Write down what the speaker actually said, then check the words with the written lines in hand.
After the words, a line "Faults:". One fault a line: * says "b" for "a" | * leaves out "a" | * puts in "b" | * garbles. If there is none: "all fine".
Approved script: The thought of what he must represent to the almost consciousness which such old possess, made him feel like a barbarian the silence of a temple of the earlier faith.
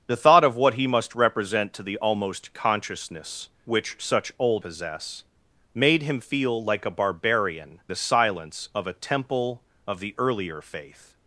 The thought of what he must represent to the almost consciousness which such old possess, made him feel like a barbarian the silence of a temple of the earlier faith.
Faults:
all fine